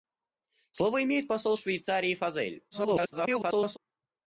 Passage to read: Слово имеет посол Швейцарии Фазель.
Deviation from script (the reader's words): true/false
true